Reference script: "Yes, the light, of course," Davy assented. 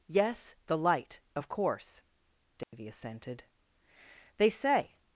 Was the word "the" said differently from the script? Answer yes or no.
no